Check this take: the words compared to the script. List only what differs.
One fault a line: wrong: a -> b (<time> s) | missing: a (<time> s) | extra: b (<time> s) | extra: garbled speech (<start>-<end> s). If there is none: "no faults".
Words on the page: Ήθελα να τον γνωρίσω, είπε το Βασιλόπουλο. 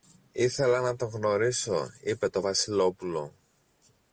no faults